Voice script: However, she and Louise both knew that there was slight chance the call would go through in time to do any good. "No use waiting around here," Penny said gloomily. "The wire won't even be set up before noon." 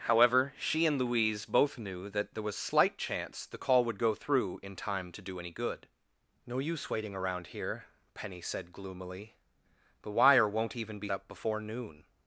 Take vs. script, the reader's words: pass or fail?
fail